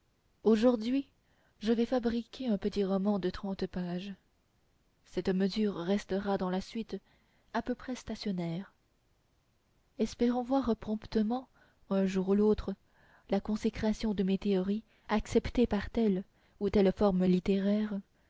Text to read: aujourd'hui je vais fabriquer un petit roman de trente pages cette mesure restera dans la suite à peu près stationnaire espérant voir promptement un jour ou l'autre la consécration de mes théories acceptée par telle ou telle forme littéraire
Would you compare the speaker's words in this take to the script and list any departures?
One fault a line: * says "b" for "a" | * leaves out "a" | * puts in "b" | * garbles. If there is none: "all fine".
all fine